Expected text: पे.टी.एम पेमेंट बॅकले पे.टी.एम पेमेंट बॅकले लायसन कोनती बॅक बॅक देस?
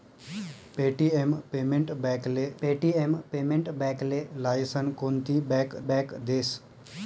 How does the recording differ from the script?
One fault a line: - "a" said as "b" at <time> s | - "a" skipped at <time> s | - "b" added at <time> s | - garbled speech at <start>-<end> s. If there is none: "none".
none